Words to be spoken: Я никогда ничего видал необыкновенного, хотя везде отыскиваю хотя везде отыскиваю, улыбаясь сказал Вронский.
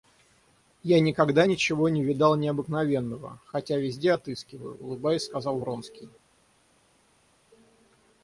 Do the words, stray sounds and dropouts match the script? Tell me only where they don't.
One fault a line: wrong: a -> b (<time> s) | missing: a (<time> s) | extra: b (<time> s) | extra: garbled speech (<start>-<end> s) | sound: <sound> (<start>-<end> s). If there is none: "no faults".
extra: не (1.9 s)
missing: хотя везде отыскиваю (4.8 s)